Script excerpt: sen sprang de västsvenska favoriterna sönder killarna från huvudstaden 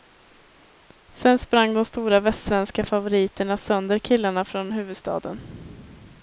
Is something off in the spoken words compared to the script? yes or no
yes